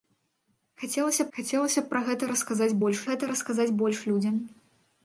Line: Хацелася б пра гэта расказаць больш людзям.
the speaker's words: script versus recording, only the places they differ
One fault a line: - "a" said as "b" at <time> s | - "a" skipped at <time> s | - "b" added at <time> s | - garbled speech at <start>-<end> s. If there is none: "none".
- "хацелася" added at 1.4 s
- "гэта расказаць больш" added at 3.1 s